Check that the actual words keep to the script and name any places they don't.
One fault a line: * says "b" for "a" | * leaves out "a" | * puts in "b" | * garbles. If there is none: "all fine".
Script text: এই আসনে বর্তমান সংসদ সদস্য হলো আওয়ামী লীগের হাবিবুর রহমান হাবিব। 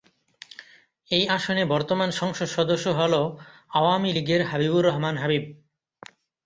all fine